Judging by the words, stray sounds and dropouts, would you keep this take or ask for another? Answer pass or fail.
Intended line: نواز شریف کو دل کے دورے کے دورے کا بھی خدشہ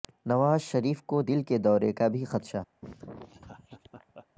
fail